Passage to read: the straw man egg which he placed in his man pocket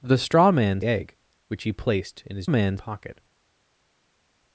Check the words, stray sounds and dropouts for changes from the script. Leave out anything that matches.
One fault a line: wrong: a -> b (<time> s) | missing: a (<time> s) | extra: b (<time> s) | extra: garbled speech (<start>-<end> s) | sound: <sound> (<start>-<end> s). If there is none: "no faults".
no faults